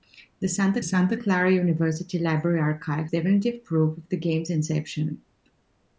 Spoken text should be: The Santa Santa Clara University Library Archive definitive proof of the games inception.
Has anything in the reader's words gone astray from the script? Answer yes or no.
no